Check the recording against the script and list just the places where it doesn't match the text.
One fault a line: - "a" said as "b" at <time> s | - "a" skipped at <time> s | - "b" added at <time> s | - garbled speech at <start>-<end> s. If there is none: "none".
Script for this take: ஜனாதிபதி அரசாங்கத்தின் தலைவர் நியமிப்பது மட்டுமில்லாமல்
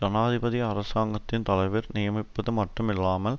none